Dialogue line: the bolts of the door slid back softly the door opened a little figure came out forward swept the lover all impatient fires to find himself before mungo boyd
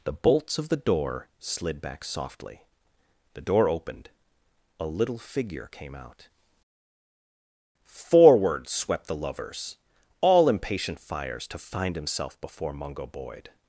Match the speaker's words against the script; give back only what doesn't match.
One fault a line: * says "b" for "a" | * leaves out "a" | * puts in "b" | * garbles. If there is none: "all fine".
* says "lovers" for "lover"